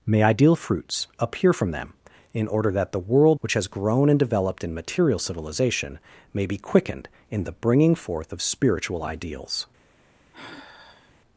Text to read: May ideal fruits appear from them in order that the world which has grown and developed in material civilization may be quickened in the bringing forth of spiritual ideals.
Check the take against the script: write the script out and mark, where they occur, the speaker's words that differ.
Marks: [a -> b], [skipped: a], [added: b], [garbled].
May ideal fruits appear from them in order that the world which has grown and developed in material civilization may be quickened in the bringing forth of spiritual ideals.